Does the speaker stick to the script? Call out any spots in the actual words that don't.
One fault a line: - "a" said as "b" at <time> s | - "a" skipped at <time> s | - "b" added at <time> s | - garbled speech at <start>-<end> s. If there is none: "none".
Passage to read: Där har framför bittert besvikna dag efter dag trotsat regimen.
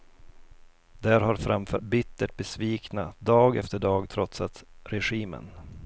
none